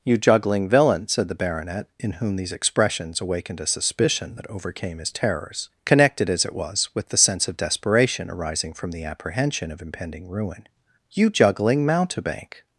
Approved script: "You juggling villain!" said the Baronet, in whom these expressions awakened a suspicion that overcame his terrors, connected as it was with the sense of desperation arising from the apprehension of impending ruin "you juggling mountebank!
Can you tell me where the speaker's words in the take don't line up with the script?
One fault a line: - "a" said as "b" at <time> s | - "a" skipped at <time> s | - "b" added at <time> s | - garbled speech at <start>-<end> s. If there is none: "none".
none